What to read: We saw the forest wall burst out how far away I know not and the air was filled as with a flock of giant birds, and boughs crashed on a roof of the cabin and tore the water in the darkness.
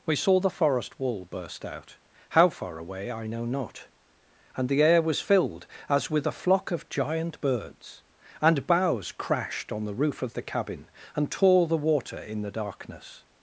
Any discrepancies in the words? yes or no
yes